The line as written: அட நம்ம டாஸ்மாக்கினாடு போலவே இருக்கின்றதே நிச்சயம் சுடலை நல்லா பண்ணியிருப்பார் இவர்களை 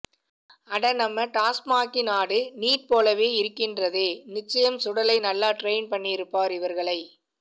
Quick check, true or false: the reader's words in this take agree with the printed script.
false